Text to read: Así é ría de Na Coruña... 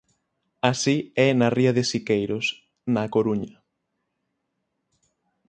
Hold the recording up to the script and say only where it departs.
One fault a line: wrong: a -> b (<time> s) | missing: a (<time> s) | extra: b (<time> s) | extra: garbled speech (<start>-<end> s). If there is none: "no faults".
extra: na (1.4 s)
extra: Siqueiros (1.9 s)